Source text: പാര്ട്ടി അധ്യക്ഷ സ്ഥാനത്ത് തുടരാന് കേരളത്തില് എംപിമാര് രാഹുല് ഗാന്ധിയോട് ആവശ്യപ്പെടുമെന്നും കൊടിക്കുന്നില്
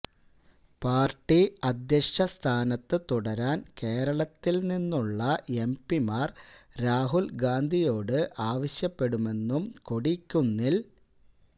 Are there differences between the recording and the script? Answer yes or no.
yes